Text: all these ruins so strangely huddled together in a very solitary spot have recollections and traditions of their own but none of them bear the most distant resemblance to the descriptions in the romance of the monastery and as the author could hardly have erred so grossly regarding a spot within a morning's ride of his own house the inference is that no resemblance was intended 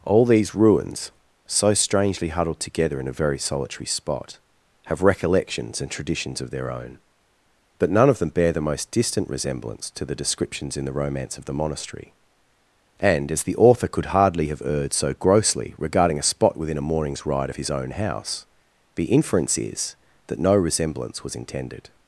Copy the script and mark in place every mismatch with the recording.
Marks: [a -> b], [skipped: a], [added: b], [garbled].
all these ruins so strangely huddled together in a very solitary spot have recollections and traditions of their own but none of them bear the most distant resemblance to the descriptions in the romance of the monastery and as the author could hardly have erred so grossly regarding a spot within a morning's ride of his own house the inference is that no resemblance was intended